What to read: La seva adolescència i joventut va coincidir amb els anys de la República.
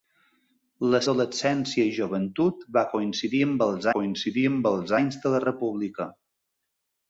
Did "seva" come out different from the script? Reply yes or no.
yes